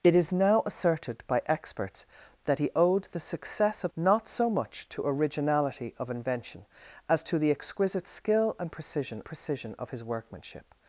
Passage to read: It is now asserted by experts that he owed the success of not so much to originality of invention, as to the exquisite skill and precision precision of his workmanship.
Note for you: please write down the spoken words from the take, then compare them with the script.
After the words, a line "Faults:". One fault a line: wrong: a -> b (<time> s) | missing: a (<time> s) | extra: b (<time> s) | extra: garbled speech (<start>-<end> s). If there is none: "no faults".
It is now asserted by experts that he owed the success of not so much to originality of invention, as to the exquisite skill and precision precision of his workmanship.
Faults:
no faults